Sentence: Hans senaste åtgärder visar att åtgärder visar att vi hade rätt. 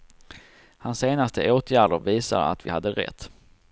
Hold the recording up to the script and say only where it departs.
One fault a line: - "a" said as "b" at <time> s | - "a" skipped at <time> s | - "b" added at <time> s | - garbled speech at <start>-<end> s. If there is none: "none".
- "åtgärder visar att" skipped at 2.6 s